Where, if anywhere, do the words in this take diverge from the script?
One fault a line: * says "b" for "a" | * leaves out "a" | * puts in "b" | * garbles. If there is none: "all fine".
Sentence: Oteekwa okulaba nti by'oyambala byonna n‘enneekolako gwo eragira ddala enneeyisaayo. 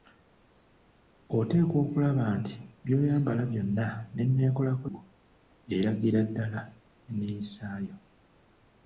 all fine